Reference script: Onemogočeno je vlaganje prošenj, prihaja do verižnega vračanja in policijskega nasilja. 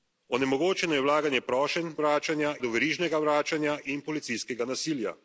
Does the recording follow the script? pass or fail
fail